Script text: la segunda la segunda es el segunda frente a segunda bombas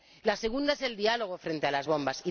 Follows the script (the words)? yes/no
no